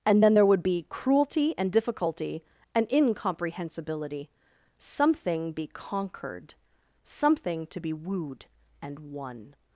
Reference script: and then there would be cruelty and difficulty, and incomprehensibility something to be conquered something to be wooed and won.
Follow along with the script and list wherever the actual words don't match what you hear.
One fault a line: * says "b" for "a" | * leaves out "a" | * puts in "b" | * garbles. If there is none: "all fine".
* leaves out "to"